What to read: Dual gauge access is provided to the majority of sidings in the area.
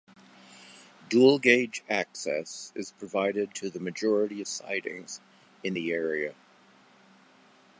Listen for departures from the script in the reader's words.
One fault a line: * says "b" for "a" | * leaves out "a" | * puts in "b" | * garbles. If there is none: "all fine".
all fine